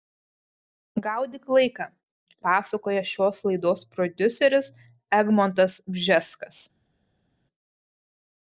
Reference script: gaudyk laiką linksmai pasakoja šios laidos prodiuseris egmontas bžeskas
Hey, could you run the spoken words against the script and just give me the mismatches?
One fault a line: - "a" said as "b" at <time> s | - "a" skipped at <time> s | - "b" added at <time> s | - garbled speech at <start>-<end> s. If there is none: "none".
- "linksmai" skipped at 1.9 s